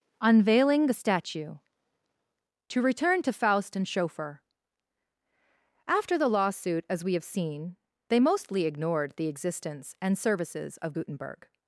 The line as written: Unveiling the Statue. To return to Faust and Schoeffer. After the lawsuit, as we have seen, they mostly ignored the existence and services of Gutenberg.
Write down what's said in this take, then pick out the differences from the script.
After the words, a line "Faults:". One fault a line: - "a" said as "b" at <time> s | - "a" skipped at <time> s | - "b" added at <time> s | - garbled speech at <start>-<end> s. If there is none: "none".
Unveiling the Statue. To return to Faust and Schoeffer. After the lawsuit, as we have seen, they mostly ignored the existence and services of Gutenberg.
Faults:
none